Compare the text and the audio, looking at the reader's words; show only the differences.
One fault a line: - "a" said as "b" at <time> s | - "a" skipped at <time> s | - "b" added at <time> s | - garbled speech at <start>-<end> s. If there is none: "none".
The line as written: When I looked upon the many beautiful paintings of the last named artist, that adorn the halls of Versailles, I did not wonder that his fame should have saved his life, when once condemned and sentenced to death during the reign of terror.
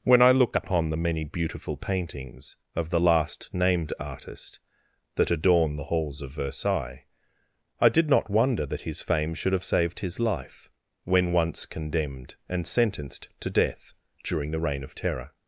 - "looked" said as "look" at 0.3 s